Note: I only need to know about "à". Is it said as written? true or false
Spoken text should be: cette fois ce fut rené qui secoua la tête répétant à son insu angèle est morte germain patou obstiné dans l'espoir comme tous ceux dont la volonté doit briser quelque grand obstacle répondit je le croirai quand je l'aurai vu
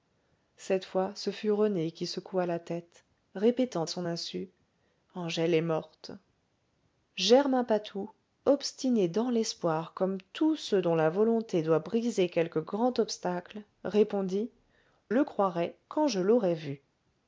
false